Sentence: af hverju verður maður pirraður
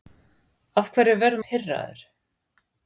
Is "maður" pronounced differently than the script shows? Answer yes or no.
yes